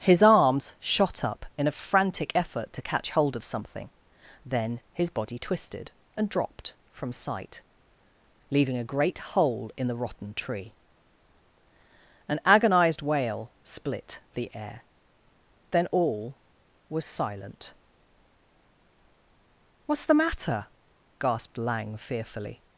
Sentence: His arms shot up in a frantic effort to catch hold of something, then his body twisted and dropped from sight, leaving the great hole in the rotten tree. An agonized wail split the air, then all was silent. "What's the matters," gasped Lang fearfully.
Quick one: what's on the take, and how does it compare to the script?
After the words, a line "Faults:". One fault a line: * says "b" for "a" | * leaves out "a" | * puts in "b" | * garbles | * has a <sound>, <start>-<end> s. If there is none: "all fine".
His arms shot up in a frantic effort to catch hold of something, then his body twisted and dropped from sight, leaving a great hole in the rotten tree. An agonized wail split the air, then all was silent. "What's the matter," gasped Lang fearfully.
Faults:
* says "a" for "the"
* says "matter" for "matters"